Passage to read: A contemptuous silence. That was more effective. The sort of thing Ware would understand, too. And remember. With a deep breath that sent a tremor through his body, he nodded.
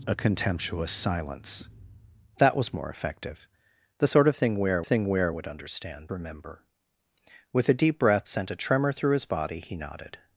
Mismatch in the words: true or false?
true